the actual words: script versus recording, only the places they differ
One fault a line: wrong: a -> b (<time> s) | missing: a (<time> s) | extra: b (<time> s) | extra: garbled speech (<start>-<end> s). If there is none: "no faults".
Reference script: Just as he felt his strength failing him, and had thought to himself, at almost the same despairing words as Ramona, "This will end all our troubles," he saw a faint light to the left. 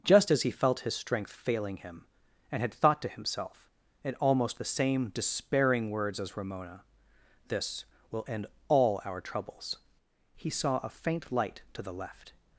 wrong: at -> in (4.0 s)